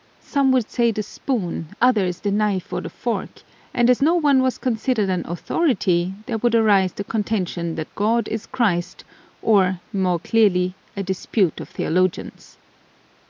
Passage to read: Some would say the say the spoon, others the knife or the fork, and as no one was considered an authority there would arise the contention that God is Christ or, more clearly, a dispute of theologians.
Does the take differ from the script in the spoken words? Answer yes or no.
yes